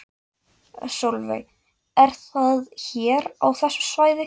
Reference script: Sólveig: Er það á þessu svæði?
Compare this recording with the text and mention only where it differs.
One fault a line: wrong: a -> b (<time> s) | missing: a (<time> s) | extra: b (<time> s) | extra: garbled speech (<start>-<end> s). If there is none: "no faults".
extra: hér (2.8 s)